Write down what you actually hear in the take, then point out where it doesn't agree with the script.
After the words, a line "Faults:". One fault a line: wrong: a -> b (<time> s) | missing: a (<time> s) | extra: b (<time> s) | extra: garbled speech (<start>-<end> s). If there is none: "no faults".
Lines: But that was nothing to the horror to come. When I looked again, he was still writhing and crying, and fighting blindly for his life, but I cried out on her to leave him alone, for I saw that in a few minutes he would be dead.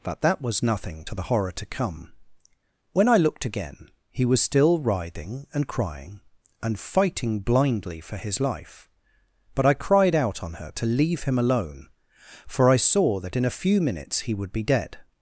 But that was nothing to the horror to come. When I looked again, he was still writhing and crying, and fighting blindly for his life, but I cried out on her to leave him alone, for I saw that in a few minutes he would be dead.
Faults:
no faults